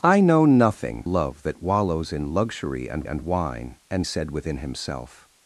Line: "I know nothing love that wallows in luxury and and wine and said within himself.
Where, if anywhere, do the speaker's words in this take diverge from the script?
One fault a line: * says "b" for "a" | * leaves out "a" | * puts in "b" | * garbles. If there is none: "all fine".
all fine